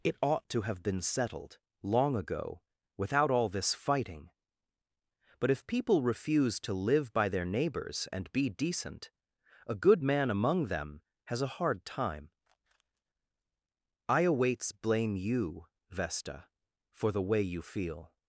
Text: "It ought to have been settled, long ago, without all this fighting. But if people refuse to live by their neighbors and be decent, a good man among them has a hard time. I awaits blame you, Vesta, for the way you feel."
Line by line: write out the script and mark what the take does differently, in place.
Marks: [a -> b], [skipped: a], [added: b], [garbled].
"It ought to have been settled, long ago, without all this fighting. But if people refuse to live by their neighbors and be decent, a good man among them has a hard time. I awaits blame you, Vesta, for the way you feel."